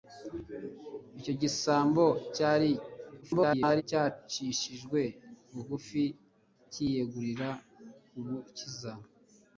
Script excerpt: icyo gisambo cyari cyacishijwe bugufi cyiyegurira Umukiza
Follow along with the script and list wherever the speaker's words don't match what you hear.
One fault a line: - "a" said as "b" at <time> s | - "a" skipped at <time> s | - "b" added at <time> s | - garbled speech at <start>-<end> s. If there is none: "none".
- garbled speech at 3.2-3.8 s